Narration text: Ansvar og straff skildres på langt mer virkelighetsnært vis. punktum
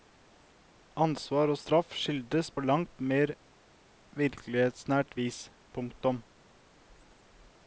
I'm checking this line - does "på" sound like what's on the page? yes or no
yes